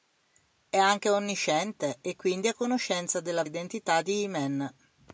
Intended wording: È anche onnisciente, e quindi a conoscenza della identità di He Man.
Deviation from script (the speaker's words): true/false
false